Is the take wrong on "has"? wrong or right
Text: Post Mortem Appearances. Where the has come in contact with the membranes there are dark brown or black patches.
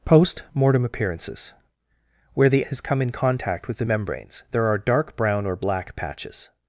right